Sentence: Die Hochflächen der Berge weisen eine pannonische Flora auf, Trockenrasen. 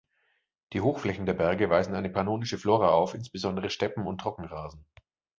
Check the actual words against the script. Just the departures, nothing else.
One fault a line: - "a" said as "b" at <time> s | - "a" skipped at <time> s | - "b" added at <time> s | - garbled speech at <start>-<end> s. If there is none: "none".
- "insbesondere Steppen und" added at 3.1 s